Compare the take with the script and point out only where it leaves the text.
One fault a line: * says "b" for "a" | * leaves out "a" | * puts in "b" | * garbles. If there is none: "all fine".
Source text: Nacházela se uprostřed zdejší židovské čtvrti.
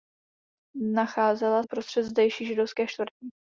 * leaves out "se"